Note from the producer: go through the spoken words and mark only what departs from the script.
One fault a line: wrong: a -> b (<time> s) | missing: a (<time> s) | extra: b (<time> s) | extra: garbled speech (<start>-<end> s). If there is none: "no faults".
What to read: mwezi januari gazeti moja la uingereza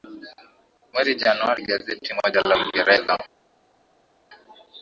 no faults